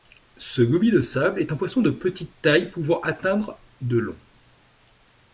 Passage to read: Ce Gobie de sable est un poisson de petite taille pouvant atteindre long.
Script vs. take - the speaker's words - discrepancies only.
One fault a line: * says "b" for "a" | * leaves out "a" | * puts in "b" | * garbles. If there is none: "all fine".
* puts in "de"